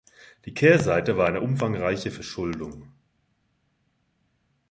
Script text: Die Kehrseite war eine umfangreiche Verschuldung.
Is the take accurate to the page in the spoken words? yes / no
yes